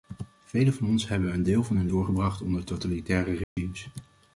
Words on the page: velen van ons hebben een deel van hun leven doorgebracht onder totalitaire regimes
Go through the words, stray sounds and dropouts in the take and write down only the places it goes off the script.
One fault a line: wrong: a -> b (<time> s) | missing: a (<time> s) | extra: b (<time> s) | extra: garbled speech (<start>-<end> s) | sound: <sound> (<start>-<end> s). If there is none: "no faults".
missing: leven (1.9 s)
sound: dropout (3.4-3.6 s)